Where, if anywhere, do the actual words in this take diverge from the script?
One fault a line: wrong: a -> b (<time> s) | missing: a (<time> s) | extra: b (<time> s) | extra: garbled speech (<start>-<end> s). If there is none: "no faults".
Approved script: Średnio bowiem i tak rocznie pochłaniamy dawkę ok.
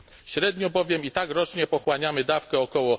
no faults